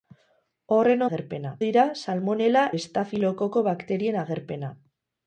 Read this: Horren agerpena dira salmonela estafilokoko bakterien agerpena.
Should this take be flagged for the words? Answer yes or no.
no